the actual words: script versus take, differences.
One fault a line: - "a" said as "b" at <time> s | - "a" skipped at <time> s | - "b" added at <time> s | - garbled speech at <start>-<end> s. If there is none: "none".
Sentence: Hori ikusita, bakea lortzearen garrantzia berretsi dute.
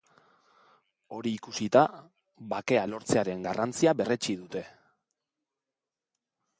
none